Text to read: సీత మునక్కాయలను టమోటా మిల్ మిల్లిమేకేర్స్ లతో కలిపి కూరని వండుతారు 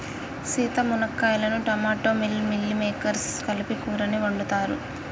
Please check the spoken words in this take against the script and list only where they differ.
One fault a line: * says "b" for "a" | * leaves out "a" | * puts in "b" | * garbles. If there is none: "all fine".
* leaves out "లతో"